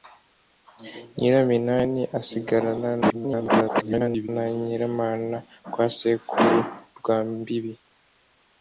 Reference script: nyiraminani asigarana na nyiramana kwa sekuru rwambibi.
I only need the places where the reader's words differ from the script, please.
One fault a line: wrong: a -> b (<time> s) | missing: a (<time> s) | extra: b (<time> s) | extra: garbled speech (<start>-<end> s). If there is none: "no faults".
extra: garbled speech (3.0-4.3 s)